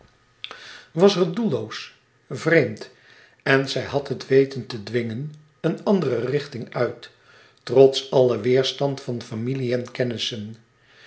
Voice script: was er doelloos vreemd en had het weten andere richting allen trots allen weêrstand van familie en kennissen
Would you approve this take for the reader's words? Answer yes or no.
no